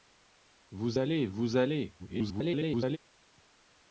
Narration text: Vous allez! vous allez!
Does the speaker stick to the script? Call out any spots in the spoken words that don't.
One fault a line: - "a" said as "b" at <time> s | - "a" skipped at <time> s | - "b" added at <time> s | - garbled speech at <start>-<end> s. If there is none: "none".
- garbled speech at 2.0-3.0 s